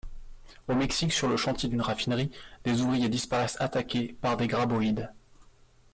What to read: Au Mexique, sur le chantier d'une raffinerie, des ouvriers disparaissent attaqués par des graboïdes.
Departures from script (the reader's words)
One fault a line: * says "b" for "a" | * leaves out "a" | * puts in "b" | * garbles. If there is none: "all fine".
all fine